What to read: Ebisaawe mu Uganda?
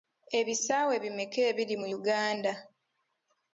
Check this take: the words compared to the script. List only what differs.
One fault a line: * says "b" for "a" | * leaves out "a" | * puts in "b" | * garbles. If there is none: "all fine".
* puts in "bimeka ebiri"